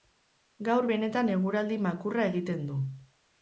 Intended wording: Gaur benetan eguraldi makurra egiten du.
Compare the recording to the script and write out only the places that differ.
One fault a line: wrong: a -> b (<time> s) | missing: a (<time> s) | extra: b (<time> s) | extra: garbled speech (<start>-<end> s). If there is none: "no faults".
no faults